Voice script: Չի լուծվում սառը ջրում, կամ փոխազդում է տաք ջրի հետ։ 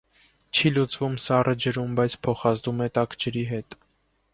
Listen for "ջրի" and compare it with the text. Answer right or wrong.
right